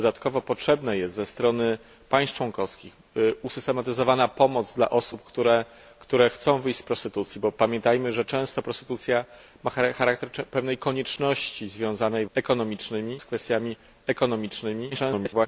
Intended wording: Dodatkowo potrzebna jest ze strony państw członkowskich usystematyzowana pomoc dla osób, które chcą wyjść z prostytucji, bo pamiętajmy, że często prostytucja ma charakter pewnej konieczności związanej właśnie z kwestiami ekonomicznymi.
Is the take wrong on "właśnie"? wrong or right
wrong